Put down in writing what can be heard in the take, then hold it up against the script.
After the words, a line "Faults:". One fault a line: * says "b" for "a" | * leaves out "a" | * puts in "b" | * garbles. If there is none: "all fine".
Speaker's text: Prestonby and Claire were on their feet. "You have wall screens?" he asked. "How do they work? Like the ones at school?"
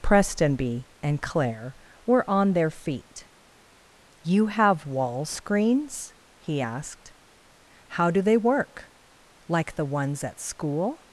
Prestonby and Claire were on their feet. "You have wall screens?" he asked. "How do they work? Like the ones at school?"
Faults:
all fine